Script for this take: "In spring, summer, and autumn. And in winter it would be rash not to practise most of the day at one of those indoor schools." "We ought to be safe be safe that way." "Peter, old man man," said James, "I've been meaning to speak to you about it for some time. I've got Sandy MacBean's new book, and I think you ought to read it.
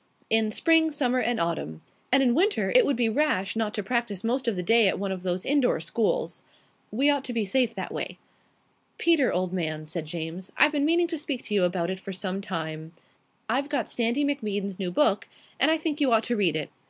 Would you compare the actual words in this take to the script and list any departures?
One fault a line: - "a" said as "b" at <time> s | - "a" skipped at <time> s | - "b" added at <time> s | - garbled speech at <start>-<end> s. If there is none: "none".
- "be safe" skipped at 7.8 s
- "man" skipped at 9.9 s